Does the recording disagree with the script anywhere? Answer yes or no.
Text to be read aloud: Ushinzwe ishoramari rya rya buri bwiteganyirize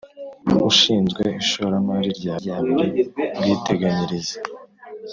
no